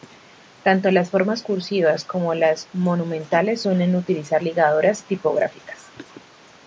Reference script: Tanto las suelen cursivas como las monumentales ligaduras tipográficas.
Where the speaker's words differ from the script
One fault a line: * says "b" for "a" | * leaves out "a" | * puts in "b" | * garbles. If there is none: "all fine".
* says "formas" for "suelen"
* puts in "suelen utilizar"